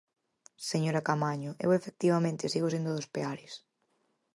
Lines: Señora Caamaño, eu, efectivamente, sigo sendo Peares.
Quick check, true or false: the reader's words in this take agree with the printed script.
false